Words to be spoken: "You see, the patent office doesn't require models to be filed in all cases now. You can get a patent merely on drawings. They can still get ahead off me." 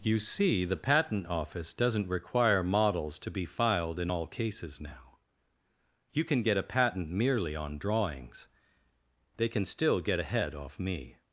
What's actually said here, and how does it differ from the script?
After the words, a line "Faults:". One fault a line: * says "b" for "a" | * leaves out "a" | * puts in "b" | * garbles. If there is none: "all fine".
"You see, the patent office doesn't require models to be filed in all cases now. You can get a patent merely on drawings. They can still get ahead off me."
Faults:
all fine